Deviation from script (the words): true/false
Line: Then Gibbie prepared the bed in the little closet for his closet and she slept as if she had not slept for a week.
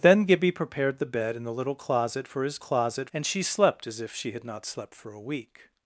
false